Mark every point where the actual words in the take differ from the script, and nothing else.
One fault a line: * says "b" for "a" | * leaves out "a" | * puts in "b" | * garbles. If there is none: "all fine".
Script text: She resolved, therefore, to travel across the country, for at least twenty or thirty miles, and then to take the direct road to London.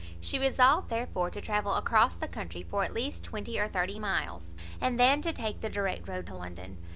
all fine